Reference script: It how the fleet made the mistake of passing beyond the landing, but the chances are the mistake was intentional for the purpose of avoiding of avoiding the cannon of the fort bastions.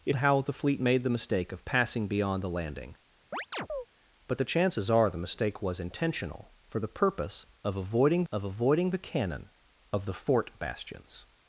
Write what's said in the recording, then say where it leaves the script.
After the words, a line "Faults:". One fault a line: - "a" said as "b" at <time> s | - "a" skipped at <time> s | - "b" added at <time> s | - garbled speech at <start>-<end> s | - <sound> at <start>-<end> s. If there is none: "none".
It how the fleet made the mistake of passing beyond the landing, but the chances are the mistake was intentional for the purpose of avoiding of avoiding the cannon of the fort bastions.
Faults:
- chirp at 3.3-3.9 s